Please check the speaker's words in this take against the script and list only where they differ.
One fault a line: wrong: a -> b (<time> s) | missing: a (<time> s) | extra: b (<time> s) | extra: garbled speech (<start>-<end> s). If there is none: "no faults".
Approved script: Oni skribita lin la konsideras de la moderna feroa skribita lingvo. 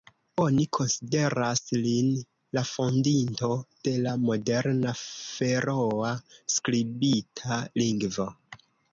wrong: skribita -> konsideras (0.8 s)
wrong: konsideras -> fondinto (2.7 s)